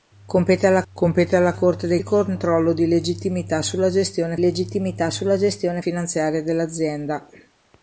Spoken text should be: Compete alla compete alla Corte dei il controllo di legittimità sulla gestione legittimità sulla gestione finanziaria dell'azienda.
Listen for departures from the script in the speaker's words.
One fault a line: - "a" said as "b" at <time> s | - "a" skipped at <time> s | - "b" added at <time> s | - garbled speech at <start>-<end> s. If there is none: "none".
none